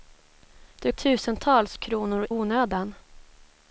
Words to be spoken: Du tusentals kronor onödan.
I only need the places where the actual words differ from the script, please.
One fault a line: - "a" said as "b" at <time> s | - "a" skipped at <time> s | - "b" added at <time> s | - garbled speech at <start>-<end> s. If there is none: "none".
none